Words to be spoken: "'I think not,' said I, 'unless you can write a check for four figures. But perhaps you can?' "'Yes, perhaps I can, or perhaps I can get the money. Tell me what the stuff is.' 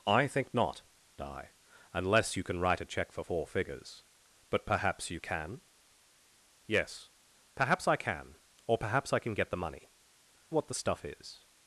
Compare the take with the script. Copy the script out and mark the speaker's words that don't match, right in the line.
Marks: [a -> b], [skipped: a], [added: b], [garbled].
"'I think not,' [skipped: said] I, 'unless you can write a check for four figures. But perhaps you can?' "'Yes, perhaps I can, or perhaps I can get the money. [skipped: Tell me] what the stuff is.'